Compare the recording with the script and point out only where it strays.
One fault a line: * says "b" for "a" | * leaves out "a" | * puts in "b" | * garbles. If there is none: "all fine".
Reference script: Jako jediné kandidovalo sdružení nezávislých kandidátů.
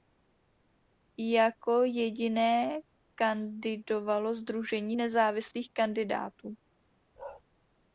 all fine